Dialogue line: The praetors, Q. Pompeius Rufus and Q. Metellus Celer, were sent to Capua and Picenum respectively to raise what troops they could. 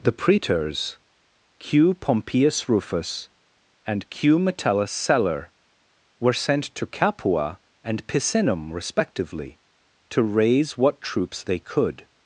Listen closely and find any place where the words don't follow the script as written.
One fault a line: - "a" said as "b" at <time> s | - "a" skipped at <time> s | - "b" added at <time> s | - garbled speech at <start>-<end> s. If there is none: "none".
none